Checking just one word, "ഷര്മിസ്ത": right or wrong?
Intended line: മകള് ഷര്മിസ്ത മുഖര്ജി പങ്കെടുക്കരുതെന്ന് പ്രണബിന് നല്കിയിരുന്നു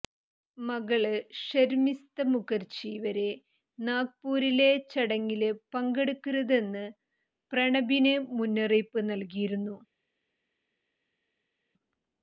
right